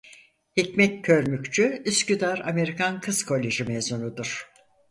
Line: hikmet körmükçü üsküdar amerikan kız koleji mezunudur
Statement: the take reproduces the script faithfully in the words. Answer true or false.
true